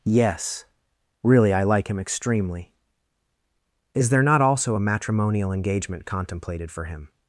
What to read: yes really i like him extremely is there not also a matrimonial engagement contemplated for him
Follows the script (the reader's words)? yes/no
yes